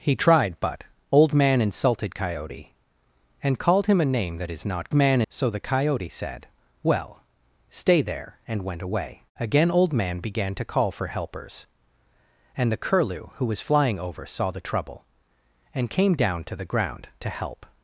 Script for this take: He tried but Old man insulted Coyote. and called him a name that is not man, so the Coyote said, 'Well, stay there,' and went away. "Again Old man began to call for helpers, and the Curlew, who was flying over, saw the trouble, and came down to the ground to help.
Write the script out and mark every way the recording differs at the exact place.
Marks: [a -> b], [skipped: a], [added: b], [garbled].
He tried but Old man insulted Coyote. and called him a name that is not man, so the Coyote said, 'Well, stay there,' and went away. "Again Old man began to call for helpers, and the Curlew, who was flying over, saw the trouble, and came down to the ground to help.